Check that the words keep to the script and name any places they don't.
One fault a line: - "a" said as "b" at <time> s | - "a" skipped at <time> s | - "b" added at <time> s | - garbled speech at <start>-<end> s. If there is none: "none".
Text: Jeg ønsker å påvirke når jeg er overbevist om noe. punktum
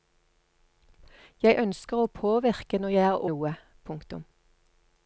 - "overbevist om" skipped at 3.3 s